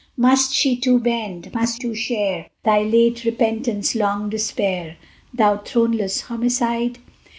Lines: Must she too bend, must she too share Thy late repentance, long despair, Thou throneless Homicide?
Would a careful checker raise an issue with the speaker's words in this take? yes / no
yes